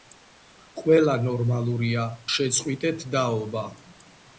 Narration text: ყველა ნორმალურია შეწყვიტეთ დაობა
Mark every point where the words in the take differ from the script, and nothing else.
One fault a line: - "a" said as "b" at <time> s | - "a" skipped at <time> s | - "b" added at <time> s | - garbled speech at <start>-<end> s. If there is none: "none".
none